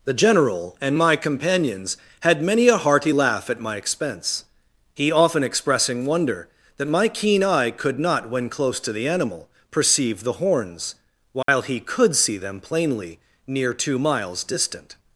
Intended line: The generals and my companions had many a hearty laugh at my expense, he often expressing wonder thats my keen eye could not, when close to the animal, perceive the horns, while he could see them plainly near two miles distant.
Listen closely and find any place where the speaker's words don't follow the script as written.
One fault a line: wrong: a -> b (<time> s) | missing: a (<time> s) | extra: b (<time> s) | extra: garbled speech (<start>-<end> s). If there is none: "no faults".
wrong: generals -> general (0.1 s)
wrong: thats -> that (6.8 s)